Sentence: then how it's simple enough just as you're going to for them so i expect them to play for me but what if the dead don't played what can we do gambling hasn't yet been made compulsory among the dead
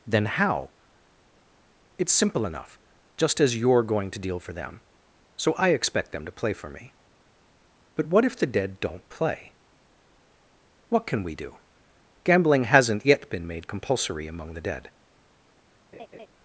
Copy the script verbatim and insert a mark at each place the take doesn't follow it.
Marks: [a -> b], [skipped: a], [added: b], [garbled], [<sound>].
then how it's simple enough just as you're going to [added: deal] for them so i expect them to play for me but what if the dead don't [played -> play] what can we do gambling hasn't yet been made compulsory among the dead [laugh]